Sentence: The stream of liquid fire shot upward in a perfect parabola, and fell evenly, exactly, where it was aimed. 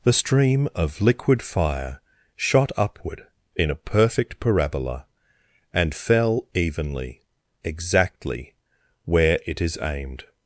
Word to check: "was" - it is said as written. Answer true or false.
false